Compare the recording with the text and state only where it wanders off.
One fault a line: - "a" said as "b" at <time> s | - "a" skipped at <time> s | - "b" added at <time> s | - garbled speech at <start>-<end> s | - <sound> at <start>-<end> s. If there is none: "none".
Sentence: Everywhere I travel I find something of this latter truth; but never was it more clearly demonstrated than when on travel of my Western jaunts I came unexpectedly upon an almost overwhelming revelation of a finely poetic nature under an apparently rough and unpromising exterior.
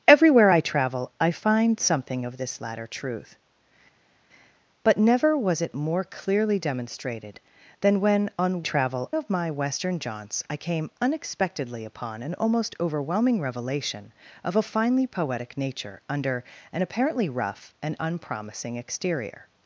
none